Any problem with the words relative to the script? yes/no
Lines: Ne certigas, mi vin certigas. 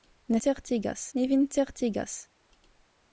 no